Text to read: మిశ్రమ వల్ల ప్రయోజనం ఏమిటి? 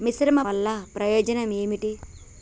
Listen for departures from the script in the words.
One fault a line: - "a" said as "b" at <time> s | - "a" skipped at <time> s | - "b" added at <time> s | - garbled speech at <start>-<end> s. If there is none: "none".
none